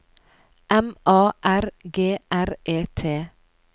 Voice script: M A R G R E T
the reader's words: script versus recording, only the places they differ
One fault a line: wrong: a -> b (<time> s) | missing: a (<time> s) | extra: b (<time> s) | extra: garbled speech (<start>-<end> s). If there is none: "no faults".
no faults